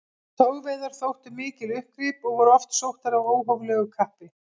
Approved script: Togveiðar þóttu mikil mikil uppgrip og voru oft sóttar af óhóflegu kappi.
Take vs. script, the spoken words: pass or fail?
fail